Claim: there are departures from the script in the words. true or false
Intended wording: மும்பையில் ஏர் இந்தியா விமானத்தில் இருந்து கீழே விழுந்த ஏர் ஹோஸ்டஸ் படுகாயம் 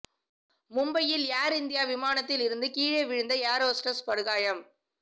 false